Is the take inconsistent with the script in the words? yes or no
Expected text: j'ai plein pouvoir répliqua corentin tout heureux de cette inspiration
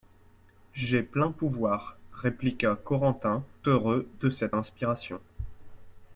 yes